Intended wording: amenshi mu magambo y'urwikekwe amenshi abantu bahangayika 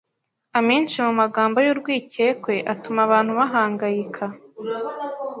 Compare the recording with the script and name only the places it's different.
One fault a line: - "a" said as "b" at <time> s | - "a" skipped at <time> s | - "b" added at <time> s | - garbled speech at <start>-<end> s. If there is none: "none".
- "amenshi" said as "atuma" at 2.7 s